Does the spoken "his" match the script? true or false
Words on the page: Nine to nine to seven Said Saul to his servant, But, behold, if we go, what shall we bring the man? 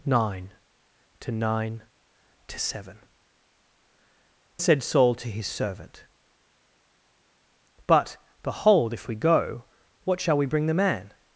true